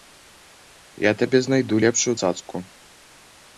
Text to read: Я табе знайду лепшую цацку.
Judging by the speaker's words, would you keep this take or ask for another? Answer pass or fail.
pass